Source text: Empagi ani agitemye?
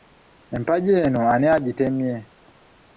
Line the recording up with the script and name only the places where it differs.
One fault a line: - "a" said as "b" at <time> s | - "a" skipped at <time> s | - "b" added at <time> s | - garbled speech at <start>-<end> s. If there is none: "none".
- "eno" added at 1.1 s